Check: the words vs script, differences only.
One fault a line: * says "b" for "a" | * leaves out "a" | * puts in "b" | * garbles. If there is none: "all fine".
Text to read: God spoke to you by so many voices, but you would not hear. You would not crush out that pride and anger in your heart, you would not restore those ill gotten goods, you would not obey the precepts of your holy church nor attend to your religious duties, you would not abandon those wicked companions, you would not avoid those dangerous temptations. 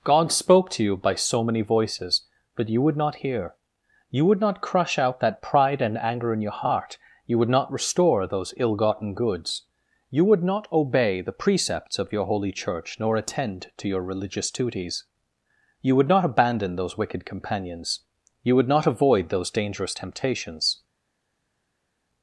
all fine